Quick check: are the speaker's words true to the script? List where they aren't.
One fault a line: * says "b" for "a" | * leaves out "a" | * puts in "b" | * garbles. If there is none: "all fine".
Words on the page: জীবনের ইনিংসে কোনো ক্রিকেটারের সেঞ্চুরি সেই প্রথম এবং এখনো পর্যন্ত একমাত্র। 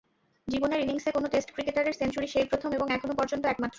* puts in "টেস্ট"